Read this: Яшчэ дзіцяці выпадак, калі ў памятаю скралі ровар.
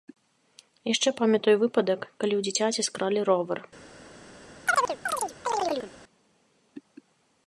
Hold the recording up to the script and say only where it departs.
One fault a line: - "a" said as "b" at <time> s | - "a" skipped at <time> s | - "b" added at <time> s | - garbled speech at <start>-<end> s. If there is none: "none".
- "дзіцяці" said as "памятаю" at 1.2 s
- "памятаю" said as "дзіцяці" at 2.5 s